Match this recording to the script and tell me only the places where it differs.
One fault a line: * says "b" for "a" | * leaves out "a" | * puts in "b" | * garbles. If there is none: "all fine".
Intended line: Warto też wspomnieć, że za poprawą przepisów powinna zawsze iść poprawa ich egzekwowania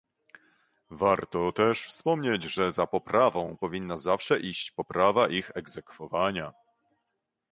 * leaves out "przepisów"